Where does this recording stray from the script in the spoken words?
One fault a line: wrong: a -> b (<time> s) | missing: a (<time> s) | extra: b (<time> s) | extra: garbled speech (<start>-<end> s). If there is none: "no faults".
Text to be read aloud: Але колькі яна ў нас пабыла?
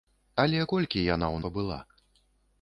missing: нас (1.4 s)